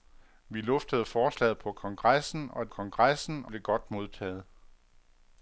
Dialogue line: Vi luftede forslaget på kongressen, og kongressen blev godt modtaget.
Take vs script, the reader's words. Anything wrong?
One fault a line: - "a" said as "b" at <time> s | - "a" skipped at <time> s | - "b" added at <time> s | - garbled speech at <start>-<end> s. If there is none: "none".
none